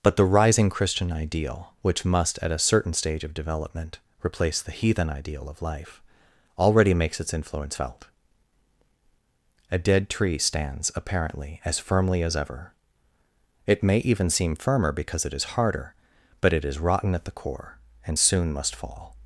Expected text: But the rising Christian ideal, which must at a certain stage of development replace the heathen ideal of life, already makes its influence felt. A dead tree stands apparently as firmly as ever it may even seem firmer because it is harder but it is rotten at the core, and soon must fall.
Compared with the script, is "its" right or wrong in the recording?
right